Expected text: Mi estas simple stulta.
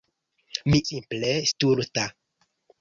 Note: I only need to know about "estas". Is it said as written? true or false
false